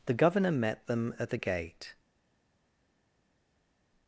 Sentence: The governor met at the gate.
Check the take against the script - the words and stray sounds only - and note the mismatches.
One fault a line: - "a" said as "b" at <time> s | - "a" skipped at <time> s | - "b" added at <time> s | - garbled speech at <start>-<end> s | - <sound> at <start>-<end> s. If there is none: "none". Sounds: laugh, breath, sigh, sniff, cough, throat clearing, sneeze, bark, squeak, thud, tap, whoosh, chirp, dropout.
- "them" added at 0.9 s